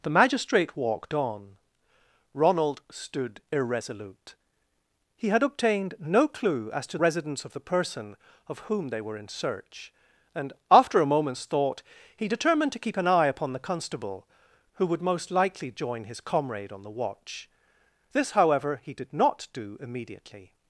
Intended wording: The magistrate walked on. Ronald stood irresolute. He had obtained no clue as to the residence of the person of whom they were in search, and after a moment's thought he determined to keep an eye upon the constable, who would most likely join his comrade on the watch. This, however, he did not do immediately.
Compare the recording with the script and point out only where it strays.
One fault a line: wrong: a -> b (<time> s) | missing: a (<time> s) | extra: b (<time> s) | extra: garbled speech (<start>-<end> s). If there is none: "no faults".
missing: the (7.0 s)